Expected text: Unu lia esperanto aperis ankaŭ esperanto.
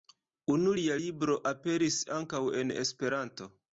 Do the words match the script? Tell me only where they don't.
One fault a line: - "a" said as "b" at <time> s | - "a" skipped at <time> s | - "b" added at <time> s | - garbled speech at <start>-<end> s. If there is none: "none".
- "esperanto" said as "libro" at 1.0 s
- "en" added at 2.6 s